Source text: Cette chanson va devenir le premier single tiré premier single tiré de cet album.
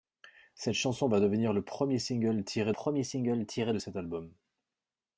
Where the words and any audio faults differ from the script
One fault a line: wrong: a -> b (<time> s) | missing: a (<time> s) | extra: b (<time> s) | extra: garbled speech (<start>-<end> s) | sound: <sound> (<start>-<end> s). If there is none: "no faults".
no faults